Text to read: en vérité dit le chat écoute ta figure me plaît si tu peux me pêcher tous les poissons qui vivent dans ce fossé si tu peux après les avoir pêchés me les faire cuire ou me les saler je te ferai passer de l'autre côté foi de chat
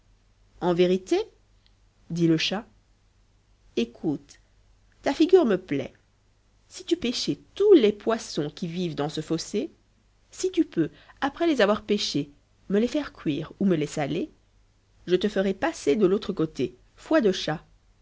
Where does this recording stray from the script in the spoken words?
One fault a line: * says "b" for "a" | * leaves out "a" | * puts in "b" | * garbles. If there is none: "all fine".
* leaves out "peux me"